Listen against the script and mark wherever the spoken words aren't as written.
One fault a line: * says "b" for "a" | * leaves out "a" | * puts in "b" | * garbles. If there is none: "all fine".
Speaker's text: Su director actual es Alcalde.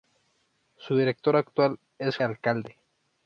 all fine